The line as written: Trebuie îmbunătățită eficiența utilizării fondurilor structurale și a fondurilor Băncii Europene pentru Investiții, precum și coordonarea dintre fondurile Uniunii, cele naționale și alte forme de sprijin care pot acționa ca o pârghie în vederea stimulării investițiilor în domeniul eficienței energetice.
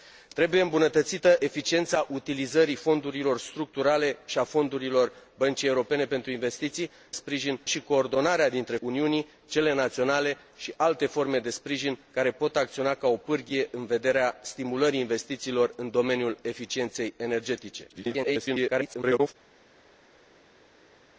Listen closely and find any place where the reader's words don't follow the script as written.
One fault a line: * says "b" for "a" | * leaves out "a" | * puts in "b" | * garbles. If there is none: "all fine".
* says "sprijin" for "precum"
* leaves out "fondurile"
* garbles